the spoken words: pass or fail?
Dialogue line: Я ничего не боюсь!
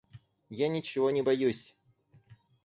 pass